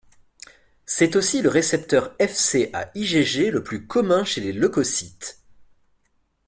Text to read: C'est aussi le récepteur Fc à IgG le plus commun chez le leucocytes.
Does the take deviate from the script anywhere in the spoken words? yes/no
yes